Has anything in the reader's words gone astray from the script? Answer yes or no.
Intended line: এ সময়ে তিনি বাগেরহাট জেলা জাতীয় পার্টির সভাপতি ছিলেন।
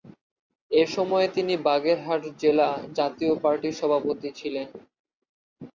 no